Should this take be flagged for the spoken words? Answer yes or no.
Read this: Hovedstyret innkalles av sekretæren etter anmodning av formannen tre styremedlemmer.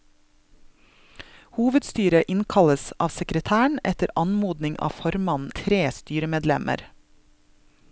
no